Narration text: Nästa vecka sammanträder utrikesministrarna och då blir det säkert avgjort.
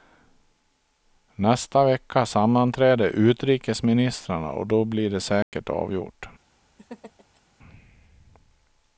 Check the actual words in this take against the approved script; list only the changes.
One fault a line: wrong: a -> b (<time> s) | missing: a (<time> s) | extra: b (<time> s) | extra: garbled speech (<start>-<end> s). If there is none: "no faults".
no faults